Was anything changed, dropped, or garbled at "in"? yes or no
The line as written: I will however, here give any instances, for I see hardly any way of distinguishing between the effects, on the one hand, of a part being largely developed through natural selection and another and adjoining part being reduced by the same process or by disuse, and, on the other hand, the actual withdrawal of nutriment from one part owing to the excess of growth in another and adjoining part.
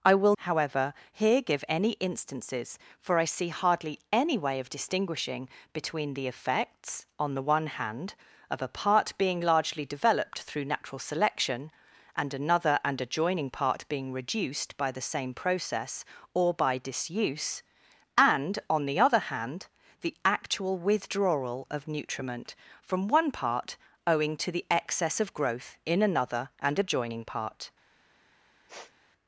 no